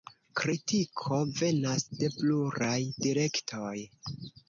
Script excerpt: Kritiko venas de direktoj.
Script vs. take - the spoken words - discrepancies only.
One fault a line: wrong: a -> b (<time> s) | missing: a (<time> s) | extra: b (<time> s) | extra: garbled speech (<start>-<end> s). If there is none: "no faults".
extra: pluraj (2.2 s)